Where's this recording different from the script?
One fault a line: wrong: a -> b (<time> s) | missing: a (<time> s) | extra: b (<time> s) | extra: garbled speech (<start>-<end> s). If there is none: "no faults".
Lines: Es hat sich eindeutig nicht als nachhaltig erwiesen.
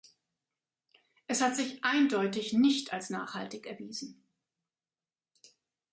no faults